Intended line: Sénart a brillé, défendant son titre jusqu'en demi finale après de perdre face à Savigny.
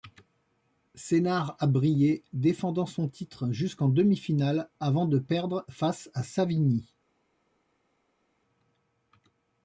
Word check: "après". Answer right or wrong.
wrong